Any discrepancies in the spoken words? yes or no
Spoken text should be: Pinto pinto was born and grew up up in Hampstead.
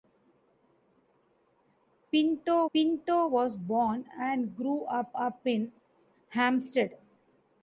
no